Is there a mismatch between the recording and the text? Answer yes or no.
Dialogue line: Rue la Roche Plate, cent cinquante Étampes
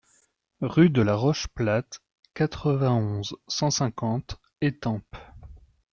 yes